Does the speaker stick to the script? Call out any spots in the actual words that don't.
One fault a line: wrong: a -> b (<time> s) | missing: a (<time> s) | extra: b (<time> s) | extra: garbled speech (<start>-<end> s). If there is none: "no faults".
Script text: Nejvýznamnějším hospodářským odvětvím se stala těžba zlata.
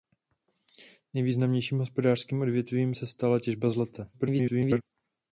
extra: garbled speech (4.1-4.8 s)